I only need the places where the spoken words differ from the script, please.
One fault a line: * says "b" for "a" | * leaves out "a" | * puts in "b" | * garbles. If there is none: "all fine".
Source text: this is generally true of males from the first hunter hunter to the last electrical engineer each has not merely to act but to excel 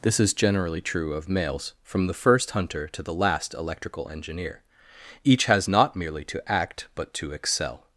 * leaves out "hunter"